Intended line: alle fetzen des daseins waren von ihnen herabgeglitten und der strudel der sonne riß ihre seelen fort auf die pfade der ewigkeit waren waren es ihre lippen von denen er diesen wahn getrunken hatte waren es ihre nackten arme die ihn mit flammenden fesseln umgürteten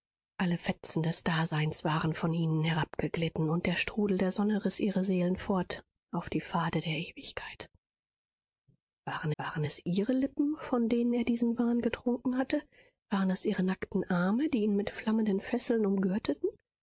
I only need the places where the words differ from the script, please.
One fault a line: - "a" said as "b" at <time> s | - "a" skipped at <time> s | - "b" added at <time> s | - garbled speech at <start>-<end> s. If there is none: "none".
none